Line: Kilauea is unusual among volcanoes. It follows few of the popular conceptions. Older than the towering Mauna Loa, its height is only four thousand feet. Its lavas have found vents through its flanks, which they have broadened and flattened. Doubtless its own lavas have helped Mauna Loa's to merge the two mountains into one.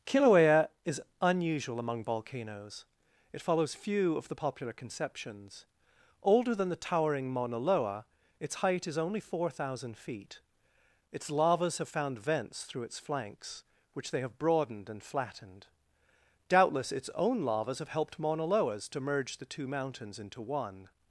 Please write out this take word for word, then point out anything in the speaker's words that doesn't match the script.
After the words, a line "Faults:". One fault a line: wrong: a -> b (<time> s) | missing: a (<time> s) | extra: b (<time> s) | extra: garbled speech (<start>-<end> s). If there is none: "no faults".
Kilauea is unusual among volcanoes. It follows few of the popular conceptions. Older than the towering Mauna Loa, its height is only four thousand feet. Its lavas have found vents through its flanks, which they have broadened and flattened. Doubtless its own lavas have helped Mauna Loa's to merge the two mountains into one.
Faults:
no faults